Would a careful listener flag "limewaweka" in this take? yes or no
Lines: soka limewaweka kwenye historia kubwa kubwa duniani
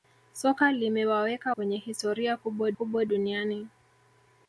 no